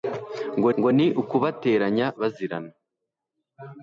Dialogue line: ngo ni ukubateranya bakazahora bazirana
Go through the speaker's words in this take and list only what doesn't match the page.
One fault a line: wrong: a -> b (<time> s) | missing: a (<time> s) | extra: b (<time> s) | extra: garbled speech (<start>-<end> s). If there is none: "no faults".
extra: ngo (0.8 s)
missing: bakazahora (2.1 s)